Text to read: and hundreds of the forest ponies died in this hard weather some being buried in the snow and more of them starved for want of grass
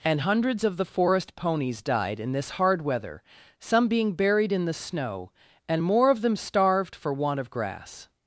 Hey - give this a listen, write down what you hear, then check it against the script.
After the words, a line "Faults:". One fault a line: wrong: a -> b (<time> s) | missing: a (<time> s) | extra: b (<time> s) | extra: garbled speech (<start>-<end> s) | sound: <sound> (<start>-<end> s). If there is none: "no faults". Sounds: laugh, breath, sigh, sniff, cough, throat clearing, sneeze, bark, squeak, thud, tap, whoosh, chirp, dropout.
and hundreds of the forest ponies died in this hard weather some being buried in the snow and more of them starved for want of grass
Faults:
no faults